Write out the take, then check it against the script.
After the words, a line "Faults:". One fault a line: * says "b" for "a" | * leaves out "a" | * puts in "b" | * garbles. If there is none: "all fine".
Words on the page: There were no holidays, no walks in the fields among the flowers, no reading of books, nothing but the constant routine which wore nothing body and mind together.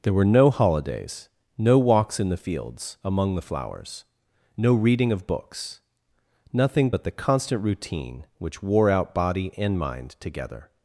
There were no holidays, no walks in the fields among the flowers, no reading of books, nothing but the constant routine which wore out body and mind together.
Faults:
* says "out" for "nothing"